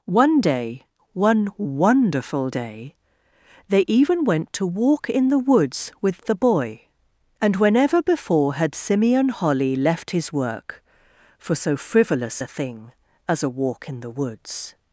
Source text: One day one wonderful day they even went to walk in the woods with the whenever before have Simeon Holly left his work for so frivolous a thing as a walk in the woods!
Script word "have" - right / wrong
wrong